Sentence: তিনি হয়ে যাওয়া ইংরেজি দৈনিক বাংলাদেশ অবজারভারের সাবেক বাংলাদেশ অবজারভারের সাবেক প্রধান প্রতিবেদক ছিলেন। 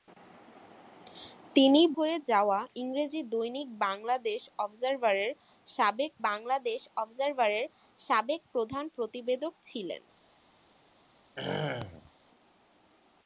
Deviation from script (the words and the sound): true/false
true